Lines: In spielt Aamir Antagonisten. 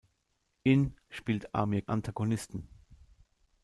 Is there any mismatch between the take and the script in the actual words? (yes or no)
no